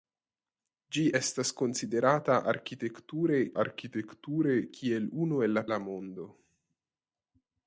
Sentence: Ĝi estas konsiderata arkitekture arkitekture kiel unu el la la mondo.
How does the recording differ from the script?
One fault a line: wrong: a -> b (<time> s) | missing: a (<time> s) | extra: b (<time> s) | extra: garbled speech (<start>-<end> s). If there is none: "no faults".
no faults